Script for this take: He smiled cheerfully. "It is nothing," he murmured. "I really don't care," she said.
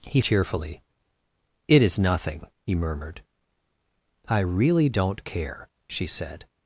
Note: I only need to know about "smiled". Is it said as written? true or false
false